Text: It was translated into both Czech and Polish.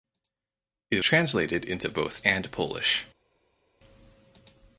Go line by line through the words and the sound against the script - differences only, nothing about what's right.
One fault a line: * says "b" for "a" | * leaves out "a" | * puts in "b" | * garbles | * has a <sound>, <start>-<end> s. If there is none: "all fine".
* leaves out "was"
* leaves out "Czech"